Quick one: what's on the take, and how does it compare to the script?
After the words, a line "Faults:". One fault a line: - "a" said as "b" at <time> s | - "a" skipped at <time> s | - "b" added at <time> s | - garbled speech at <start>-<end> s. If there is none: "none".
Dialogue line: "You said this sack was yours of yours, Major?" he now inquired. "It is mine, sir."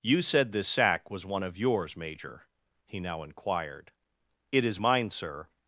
"You said this sack was one of yours, Major?" he now inquired. "It is mine, sir."
Faults:
- "yours" said as "one" at 1.3 s